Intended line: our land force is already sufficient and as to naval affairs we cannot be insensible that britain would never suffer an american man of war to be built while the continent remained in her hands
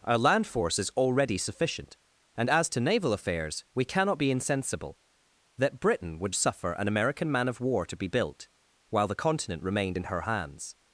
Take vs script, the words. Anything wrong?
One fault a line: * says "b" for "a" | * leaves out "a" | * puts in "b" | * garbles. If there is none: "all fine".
* leaves out "never"